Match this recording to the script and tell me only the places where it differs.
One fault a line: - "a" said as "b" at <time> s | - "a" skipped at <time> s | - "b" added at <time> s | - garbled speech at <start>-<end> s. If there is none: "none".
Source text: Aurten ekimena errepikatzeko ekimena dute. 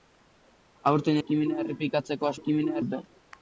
none